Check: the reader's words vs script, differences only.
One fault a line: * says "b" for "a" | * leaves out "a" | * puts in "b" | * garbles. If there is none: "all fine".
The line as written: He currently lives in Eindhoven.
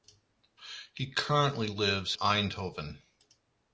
* leaves out "in"